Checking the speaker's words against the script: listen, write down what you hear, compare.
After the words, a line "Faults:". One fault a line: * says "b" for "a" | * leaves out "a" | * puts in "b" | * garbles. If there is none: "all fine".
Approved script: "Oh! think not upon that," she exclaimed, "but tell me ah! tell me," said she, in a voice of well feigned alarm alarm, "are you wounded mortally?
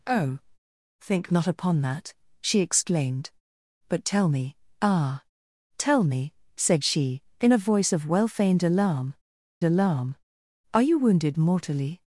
"Oh! think not upon that," she exclaimed, "but tell me ah! tell me," said she, in a voice of well feigned alarm alarm, "are you wounded mortally?
Faults:
all fine